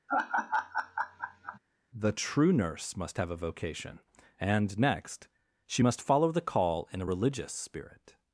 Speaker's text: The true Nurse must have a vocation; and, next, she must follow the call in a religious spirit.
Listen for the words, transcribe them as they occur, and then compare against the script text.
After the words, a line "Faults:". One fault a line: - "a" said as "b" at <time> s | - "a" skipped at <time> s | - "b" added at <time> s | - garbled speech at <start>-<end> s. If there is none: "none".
The true Nurse must have a vocation; and, next, she must follow the call in a religious spirit.
Faults:
none